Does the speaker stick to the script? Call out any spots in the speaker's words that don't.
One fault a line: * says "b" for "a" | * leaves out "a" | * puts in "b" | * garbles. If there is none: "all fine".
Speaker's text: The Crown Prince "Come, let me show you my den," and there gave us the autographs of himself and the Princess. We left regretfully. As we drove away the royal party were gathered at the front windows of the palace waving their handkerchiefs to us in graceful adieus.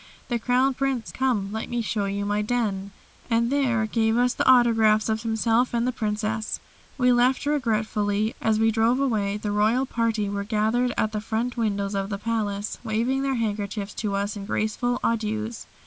all fine